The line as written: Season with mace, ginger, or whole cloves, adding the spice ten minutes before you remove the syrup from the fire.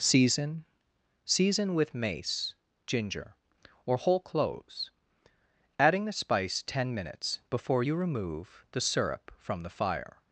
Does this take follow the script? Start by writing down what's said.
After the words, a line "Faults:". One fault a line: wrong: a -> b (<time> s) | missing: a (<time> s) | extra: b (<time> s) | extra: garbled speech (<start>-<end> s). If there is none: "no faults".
Season season with mace, ginger, or whole cloves, adding the spice ten minutes before you remove the syrup from the fire.
Faults:
extra: season (1.2 s)